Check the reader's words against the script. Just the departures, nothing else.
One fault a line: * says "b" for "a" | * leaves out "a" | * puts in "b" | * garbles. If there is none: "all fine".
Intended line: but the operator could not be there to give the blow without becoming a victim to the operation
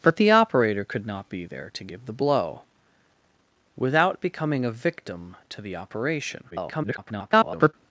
* garbles